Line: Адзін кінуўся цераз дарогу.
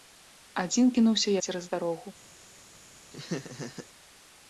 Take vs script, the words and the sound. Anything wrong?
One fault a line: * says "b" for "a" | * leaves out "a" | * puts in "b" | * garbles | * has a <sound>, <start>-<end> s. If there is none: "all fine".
* has a laugh, 3.1-3.9 s